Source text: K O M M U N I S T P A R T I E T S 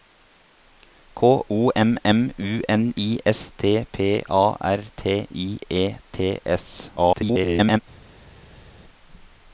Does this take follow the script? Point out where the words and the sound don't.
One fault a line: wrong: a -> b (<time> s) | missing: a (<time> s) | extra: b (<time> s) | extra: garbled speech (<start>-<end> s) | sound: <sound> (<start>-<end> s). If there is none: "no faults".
extra: garbled speech (7.0-7.8 s)